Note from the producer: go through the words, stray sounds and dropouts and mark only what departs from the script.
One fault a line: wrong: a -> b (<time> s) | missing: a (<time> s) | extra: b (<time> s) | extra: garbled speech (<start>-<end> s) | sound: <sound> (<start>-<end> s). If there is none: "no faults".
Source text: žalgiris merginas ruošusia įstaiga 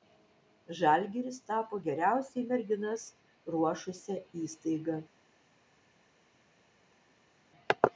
extra: tapo geriausiai (1.5 s)